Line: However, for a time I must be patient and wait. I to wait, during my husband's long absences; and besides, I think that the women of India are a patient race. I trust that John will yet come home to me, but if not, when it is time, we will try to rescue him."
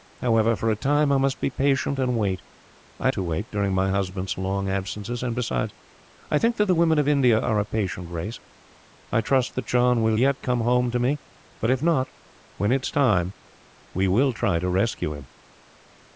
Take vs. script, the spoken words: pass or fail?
pass